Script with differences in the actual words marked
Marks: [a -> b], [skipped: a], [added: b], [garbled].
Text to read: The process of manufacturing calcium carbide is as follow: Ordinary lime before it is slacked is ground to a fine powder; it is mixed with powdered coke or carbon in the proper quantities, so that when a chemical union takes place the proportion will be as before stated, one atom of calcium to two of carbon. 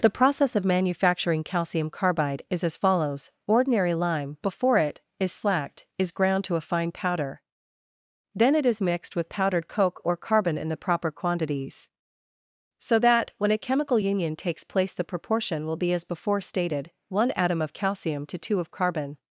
The process of manufacturing calcium carbide is as [follow: -> follows] Ordinary lime before it is slacked is ground to a fine powder; [added: then] it is mixed with powdered coke or carbon in the proper quantities, so that when a chemical union takes place the proportion will be as before stated, one atom of calcium to two of carbon.